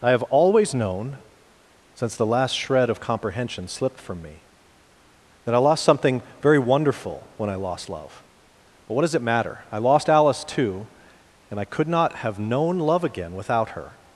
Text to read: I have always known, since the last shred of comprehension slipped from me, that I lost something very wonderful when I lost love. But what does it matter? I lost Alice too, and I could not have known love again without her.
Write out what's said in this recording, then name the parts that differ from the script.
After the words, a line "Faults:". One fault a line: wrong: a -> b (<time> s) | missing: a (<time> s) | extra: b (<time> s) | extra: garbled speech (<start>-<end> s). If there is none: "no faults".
I have always known, since the last shred of comprehension slipped from me, that I lost something very wonderful when I lost love. But what does it matter? I lost Alice too, and I could not have known love again without her.
Faults:
no faults